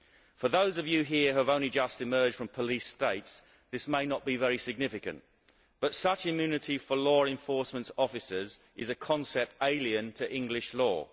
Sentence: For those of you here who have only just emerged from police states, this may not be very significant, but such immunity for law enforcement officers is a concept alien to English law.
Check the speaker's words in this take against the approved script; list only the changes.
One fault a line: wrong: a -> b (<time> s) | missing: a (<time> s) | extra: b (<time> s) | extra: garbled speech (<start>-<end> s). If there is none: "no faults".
no faults